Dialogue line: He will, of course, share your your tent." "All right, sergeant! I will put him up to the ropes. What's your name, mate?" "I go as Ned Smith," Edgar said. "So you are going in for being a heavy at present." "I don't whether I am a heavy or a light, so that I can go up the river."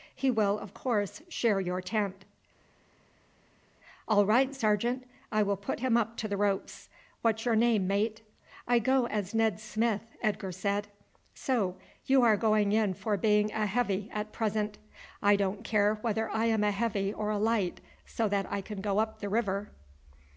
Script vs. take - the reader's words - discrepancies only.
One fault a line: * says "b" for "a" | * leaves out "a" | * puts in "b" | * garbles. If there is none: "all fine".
* leaves out "your"
* puts in "care"